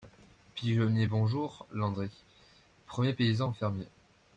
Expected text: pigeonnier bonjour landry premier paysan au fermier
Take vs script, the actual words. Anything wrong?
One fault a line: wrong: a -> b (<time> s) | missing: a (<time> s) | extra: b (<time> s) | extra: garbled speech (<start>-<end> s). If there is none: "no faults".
no faults